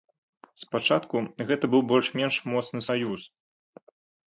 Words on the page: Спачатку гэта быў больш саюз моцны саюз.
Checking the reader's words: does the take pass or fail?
fail